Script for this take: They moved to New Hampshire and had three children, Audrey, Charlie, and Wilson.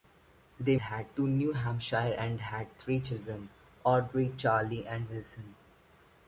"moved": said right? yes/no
no